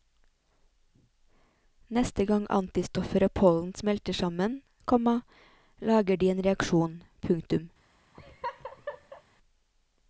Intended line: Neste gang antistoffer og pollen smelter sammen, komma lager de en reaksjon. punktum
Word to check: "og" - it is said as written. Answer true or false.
true